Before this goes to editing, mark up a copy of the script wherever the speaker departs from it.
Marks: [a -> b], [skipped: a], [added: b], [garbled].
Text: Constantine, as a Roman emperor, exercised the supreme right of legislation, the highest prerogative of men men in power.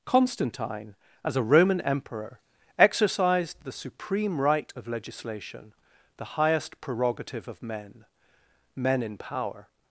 Constantine, as a Roman emperor, exercised the supreme right of legislation, the highest prerogative of men men in power.